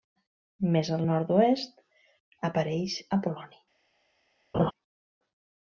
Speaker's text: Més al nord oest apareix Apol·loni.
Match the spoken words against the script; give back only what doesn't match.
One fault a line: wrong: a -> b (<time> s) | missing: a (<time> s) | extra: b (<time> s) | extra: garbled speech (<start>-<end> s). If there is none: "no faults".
no faults